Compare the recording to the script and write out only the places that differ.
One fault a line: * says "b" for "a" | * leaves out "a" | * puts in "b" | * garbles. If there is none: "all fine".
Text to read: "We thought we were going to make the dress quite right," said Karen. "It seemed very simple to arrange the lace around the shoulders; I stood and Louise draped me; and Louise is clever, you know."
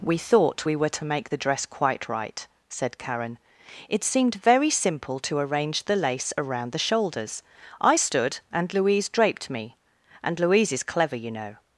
* leaves out "going"